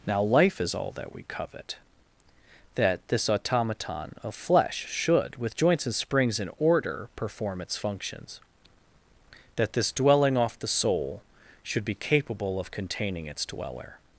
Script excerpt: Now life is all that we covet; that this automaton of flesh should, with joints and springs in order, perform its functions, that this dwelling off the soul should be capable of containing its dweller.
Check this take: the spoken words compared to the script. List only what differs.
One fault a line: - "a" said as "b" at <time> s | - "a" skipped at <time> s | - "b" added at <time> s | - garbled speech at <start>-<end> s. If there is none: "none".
none